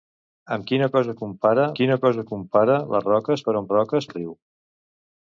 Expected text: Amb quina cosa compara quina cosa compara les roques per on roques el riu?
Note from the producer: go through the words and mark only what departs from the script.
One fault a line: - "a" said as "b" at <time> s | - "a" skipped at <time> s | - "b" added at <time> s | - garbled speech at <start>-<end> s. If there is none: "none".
none